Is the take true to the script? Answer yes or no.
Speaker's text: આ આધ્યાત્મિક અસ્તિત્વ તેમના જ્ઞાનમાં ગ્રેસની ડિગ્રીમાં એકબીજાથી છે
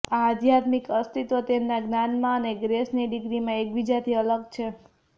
no